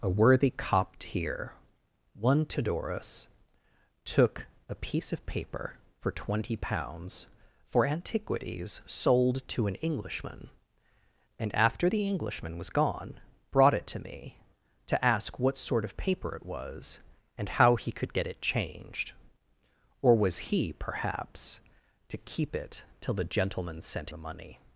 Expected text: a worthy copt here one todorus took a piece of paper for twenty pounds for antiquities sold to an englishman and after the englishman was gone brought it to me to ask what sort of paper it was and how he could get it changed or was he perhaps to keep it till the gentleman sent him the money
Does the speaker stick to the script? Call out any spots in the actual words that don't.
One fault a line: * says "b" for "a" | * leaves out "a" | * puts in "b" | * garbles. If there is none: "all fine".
* leaves out "him"